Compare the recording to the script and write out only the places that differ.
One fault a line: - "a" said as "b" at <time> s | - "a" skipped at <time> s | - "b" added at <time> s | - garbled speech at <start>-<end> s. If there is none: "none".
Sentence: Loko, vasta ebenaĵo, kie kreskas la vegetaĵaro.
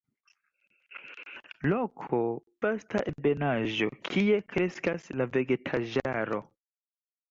none